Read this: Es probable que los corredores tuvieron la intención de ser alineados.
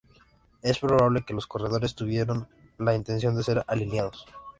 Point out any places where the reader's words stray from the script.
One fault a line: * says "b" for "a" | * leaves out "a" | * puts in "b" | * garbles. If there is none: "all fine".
all fine